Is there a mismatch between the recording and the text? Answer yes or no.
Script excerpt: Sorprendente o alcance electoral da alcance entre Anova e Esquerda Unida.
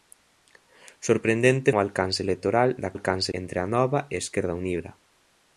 no